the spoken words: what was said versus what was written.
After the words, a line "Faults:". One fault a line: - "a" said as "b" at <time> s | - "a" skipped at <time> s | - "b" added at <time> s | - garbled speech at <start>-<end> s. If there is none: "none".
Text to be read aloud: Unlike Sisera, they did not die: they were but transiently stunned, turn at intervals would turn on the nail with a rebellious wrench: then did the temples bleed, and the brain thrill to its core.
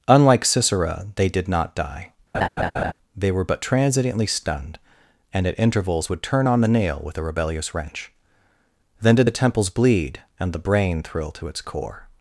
Unlike Sisera, they did not die: they were but transiently stunned, and at intervals would turn on the nail with a rebellious wrench: then did the temples bleed, and the brain thrill to its core.
Faults:
- "turn" said as "and" at 5.3 s